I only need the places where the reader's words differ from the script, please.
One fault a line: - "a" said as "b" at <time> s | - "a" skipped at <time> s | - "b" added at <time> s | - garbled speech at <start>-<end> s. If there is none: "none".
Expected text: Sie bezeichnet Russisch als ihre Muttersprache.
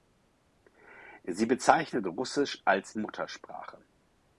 - "ihre" skipped at 3.0 s